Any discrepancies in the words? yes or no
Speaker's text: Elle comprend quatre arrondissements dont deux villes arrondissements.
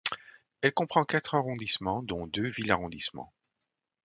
no